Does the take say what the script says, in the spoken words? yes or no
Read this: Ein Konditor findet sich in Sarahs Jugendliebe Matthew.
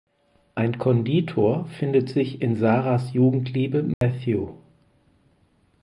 yes